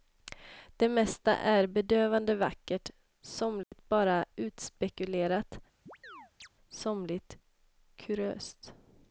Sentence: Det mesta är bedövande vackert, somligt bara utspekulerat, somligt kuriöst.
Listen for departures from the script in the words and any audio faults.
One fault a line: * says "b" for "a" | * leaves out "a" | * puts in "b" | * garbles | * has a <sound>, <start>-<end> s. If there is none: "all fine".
* has a dropout, 3.6-3.7 s
* has a chirp, 5.9-6.5 s